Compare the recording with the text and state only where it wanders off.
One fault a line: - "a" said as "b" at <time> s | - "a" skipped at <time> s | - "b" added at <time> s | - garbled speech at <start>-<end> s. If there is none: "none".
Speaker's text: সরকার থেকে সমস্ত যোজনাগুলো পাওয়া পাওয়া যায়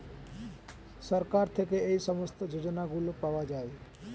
- "এই" added at 1.9 s
- "পাওয়া" skipped at 3.4 s